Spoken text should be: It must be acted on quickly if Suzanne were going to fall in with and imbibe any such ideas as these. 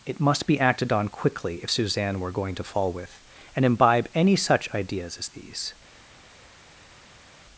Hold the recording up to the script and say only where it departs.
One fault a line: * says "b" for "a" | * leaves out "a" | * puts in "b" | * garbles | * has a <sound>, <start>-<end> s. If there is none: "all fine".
* leaves out "in"